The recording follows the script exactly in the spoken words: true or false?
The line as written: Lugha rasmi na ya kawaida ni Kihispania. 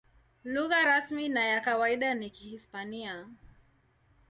true